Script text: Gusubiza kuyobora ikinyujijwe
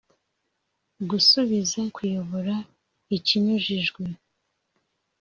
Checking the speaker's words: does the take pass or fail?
pass